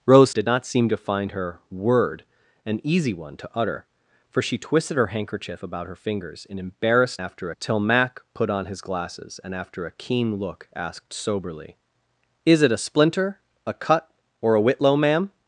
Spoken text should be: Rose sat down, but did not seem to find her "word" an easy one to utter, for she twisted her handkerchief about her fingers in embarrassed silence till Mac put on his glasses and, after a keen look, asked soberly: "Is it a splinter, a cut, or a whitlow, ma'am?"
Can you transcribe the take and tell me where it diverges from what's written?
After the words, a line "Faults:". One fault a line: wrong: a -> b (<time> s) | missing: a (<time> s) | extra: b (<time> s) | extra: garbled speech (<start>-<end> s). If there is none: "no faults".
Rose did not seem to find her "word" an easy one to utter, for she twisted her handkerchief about her fingers in embarrassed after till Mac put on his glasses and, after a keen look, asked soberly: "Is it a splinter, a cut, or a whitlow, ma'am?"
Faults:
missing: sat down but (0.3 s)
wrong: silence -> after (7.2 s)